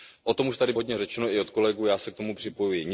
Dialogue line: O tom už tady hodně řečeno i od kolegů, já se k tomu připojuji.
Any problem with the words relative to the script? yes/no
no